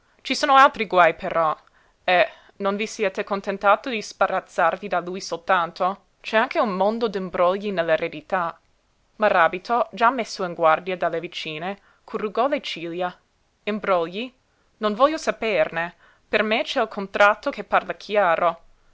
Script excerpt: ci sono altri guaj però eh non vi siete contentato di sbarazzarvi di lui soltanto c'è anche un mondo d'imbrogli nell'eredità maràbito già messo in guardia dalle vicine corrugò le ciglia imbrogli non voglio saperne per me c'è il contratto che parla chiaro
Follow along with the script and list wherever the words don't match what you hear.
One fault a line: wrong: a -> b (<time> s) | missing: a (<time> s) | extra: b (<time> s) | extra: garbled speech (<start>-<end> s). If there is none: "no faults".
no faults